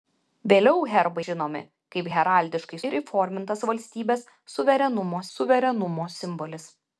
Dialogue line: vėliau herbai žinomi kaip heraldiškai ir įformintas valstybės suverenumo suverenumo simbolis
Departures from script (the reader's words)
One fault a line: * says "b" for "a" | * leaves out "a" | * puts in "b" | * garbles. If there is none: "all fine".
all fine